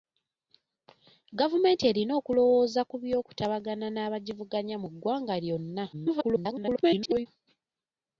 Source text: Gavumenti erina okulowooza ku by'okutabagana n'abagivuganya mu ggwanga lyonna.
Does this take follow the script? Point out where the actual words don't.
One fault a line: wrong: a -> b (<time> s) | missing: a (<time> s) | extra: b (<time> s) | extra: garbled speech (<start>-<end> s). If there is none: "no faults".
extra: garbled speech (5.9-7.3 s)